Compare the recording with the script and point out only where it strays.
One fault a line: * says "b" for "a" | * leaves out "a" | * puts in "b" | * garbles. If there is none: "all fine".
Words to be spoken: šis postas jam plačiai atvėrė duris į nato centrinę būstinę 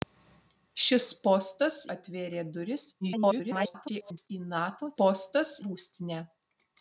* leaves out "jam plačiai"
* garbles
* says "postas" for "centrinę"